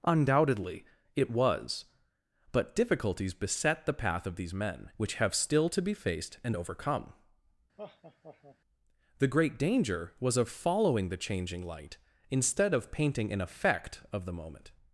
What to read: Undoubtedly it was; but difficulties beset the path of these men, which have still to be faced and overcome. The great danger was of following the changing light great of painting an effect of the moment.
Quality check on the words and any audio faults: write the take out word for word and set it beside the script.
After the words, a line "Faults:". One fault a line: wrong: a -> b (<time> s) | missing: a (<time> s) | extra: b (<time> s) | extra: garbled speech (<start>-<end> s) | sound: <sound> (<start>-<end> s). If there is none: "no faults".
Undoubtedly it was; but difficulties beset the path of these men, which have still to be faced and overcome. The great danger was of following the changing light instead of painting an effect of the moment.
Faults:
sound: laugh (7.8-8.6 s)
wrong: great -> instead (12.3 s)